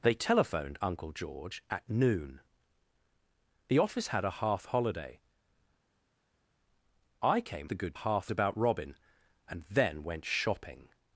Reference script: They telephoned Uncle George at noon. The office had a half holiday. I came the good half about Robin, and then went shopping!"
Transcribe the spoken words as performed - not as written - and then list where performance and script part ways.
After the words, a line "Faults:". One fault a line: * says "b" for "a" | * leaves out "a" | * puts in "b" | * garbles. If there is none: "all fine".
They telephoned Uncle George at noon. The office had a half holiday. I came the good half about Robin, and then went shopping!"
Faults:
all fine